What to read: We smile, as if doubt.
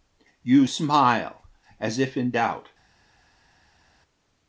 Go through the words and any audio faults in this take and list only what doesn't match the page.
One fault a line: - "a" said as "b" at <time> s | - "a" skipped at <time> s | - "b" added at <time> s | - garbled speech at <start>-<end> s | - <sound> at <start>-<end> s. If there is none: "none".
- "We" said as "You" at 0.4 s
- "in" added at 2.2 s